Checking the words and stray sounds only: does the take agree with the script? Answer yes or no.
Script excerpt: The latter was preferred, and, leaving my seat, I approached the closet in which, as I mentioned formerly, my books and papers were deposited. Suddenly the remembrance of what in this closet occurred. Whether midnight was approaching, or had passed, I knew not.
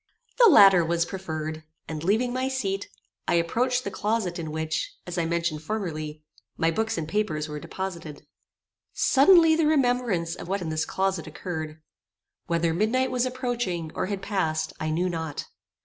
yes